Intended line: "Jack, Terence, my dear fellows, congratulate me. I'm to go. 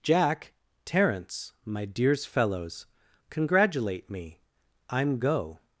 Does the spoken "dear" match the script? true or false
false